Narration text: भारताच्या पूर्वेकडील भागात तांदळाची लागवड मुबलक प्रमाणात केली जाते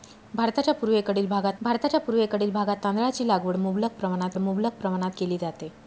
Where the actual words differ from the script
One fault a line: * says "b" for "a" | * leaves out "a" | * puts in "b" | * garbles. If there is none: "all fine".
* puts in "भारताच्या पूर्वेकडील भागात"
* puts in "मुबलक प्रमाणात"